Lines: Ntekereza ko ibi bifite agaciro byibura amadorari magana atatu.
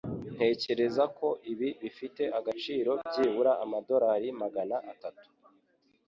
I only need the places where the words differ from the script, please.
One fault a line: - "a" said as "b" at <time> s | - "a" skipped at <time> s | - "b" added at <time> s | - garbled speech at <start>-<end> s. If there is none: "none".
none